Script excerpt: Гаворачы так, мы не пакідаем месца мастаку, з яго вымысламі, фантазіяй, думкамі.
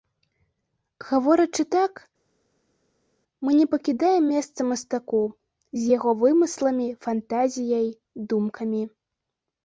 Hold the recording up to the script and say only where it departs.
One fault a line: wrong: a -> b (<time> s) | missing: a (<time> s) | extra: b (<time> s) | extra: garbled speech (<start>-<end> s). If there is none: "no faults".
no faults